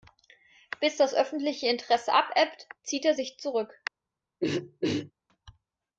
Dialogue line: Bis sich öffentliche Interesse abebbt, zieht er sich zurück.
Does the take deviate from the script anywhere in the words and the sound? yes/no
yes